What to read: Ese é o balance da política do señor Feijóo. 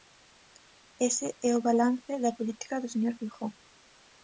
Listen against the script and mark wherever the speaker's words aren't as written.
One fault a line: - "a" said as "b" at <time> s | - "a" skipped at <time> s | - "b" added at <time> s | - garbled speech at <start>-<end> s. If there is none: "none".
none